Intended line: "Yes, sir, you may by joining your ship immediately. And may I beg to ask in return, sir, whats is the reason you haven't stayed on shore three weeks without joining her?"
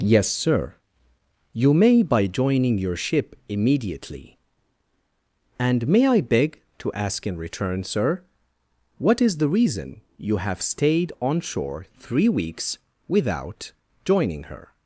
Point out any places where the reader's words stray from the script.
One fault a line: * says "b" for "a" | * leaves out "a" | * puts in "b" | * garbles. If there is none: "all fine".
* says "what" for "whats"
* says "have" for "haven't"